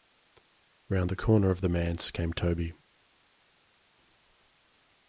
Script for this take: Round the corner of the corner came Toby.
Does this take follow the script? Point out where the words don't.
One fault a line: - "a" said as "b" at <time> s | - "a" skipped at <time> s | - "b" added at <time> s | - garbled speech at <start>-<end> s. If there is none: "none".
- "corner" said as "manse" at 1.7 s